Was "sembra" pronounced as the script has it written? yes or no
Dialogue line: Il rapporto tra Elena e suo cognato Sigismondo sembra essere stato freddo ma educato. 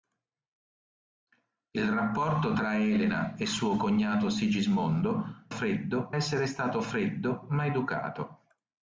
no